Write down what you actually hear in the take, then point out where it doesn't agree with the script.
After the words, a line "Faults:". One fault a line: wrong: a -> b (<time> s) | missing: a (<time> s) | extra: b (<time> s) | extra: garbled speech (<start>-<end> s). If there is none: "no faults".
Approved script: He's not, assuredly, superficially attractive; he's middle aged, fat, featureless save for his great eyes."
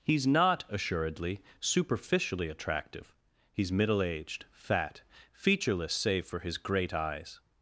He's not, assuredly, superficially attractive; he's middle aged, fat, featureless save for his great eyes."
Faults:
no faults